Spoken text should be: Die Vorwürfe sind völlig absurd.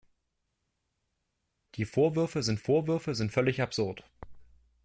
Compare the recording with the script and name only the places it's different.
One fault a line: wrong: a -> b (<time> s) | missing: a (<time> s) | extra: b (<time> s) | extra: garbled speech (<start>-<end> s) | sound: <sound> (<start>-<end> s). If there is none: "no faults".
extra: Vorwürfe sind (2.6 s)